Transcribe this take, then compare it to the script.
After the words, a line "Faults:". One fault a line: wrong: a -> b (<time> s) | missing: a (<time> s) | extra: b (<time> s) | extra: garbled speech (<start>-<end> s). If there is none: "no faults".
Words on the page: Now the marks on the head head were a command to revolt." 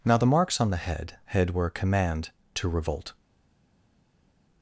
Now the marks on the head head were a command to revolt."
Faults:
no faults